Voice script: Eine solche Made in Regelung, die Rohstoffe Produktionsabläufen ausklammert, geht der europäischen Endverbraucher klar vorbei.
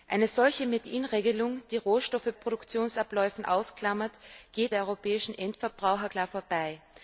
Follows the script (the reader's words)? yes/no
yes